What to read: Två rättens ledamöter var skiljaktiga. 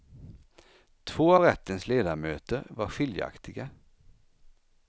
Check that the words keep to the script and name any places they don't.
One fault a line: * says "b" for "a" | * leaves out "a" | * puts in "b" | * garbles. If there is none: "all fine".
all fine